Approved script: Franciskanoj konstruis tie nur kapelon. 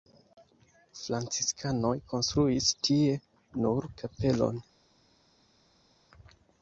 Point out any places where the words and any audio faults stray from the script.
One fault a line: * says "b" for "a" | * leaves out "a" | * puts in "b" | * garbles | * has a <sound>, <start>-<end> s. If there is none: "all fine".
all fine